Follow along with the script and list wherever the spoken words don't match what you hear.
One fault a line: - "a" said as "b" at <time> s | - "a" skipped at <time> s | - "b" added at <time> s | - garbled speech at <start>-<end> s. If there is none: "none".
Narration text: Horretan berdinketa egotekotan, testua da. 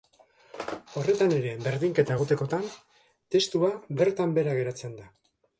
- "ere" added at 1.4 s
- "bertan behera geratzen" added at 4.0 s